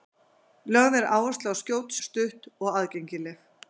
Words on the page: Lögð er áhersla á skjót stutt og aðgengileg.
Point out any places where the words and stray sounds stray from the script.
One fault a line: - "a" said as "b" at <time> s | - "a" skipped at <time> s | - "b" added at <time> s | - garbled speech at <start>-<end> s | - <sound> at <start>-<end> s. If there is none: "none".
none